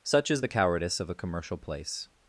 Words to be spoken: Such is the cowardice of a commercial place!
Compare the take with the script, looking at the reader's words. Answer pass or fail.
pass